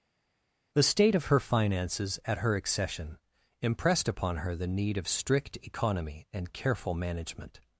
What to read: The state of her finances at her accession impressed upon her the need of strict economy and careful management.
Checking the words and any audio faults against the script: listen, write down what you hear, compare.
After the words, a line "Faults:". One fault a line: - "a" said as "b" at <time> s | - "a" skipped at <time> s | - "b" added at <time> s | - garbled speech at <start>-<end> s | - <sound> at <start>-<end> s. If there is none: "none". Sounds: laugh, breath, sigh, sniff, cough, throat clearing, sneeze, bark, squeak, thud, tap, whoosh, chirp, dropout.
The state of her finances at her accession impressed upon her the need of strict economy and careful management.
Faults:
none